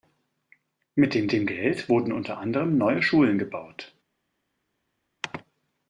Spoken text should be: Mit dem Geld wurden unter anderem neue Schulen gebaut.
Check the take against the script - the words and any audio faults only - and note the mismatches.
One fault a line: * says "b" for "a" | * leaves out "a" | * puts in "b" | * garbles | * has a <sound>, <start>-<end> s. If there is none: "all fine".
* puts in "dem"